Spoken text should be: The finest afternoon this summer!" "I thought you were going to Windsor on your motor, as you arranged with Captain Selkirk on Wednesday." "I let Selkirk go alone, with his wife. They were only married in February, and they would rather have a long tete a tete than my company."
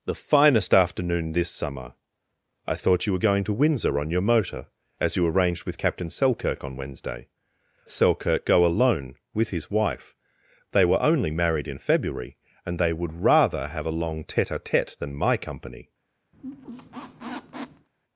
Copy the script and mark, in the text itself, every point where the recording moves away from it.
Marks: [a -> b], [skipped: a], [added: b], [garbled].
The finest afternoon this summer!" "I thought you were going to Windsor on your motor, as you arranged with Captain Selkirk on Wednesday." [skipped: "I let] Selkirk go alone, with his wife. They were only married in February, and they would rather have a long tete a tete than my company."